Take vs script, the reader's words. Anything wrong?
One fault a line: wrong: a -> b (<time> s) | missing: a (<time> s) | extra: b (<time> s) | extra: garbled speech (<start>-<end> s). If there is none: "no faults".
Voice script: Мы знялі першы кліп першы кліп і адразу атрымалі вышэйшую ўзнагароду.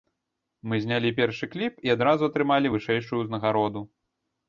missing: першы кліп (1.8 s)